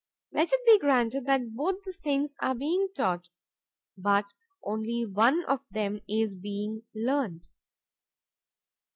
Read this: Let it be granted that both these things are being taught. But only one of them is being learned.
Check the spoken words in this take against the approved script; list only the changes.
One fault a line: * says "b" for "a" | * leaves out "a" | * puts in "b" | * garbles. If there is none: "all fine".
all fine